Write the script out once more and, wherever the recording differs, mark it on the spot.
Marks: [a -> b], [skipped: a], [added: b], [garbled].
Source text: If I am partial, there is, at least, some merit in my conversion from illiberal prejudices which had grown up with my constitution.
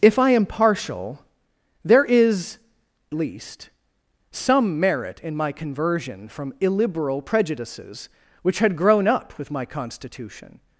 If I am partial, there is, [skipped: at] least, some merit in my conversion from illiberal prejudices which had grown up with my constitution.